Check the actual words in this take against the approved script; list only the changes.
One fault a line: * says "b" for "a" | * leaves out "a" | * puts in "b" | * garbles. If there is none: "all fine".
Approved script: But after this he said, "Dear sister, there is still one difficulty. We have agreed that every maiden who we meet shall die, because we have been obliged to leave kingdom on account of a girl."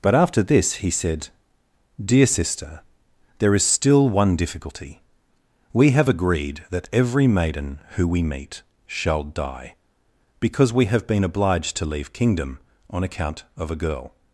all fine